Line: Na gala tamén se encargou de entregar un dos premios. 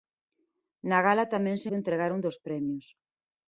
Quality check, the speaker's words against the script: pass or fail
fail